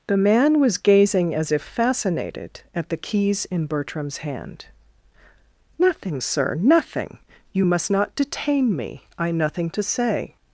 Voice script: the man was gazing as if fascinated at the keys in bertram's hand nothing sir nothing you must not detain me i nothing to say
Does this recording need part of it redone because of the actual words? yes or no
no